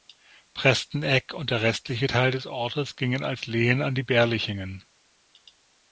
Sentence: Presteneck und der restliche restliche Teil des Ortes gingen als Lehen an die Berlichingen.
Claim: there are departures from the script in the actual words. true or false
true